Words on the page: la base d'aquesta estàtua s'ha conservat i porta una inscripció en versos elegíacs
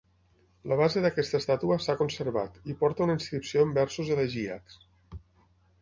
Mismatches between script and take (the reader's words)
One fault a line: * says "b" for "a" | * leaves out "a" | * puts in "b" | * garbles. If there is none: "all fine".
all fine